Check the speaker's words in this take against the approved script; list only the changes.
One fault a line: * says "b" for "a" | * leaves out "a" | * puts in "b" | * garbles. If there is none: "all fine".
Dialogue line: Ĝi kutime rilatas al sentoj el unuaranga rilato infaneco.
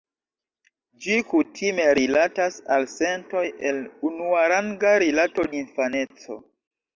all fine